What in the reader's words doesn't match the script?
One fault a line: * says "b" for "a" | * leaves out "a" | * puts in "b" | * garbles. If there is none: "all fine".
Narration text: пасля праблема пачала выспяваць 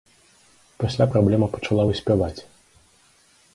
all fine